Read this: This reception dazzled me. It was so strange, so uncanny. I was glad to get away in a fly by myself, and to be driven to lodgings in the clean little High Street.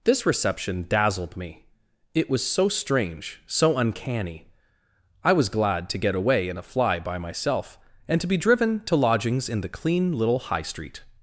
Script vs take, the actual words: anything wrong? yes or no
no